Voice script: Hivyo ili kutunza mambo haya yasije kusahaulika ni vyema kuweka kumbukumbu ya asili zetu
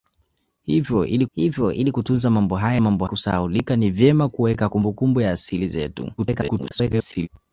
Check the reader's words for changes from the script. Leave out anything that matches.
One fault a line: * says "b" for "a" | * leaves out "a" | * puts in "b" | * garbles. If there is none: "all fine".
* puts in "hivyo ili"
* says "mambo" for "yasije"
* garbles